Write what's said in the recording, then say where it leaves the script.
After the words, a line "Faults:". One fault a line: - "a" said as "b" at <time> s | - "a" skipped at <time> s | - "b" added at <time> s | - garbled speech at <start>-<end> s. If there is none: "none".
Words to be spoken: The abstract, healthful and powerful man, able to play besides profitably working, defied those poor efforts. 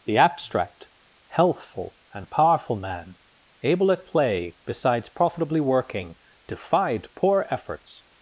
The abstract, healthful and powerful man, able at play besides profitably working, defied poor efforts.
Faults:
- "to" said as "at" at 3.9 s
- "those" skipped at 7.1 s